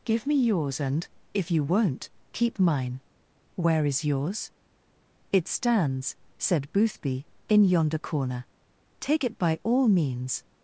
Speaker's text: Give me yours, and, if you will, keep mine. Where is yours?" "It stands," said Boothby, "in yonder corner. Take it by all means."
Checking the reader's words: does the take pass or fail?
fail